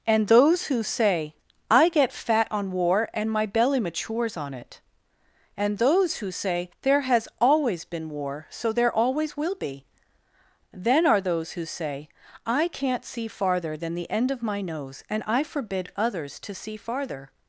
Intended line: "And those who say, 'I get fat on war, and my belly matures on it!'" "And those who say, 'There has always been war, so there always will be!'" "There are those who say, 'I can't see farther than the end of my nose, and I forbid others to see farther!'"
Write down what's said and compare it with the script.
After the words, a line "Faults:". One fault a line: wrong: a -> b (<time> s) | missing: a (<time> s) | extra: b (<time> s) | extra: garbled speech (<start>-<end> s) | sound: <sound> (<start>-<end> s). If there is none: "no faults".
"And those who say, 'I get fat on war, and my belly matures on it!'" "And those who say, 'There has always been war, so there always will be!'" "Then are those who say, 'I can't see farther than the end of my nose, and I forbid others to see farther!'"
Faults:
wrong: There -> Then (10.7 s)